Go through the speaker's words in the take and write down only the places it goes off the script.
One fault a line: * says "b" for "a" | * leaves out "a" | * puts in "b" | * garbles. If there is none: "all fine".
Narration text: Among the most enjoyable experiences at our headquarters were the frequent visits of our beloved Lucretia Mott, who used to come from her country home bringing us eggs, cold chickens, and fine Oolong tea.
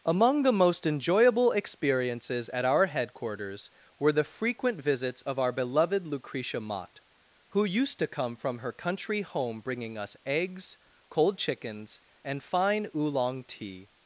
all fine